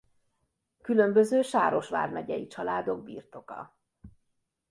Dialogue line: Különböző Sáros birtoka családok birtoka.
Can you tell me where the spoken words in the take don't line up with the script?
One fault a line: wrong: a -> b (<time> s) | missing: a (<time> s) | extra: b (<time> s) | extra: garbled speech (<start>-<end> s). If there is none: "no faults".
wrong: birtoka -> vármegyei (1.9 s)